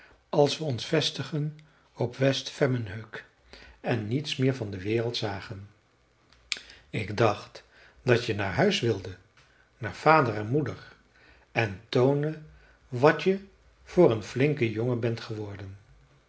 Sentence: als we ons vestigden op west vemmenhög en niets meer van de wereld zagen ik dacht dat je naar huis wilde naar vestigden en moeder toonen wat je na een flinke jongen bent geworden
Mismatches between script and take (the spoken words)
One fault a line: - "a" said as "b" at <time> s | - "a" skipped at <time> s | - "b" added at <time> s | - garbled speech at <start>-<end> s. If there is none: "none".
- "vestigden" said as "vader" at 9.9 s
- "en" added at 11.5 s
- "na" said as "voor" at 13.8 s